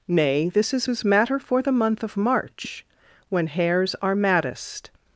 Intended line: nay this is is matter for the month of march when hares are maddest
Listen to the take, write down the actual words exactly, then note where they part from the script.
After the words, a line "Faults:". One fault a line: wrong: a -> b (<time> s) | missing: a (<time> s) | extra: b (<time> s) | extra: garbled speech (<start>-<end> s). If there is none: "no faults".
nay this is is matter for the month of march when hares are maddest
Faults:
no faults